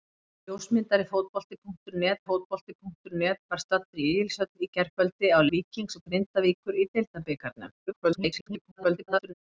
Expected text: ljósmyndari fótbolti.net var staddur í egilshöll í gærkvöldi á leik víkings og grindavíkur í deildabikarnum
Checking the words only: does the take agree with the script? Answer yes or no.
no